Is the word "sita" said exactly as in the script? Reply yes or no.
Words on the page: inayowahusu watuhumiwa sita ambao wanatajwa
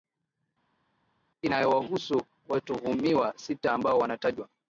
yes